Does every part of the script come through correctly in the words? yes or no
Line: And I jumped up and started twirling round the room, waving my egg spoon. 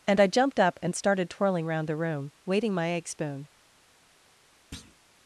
no